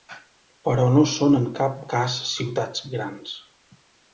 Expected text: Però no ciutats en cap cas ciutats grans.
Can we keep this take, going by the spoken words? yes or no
no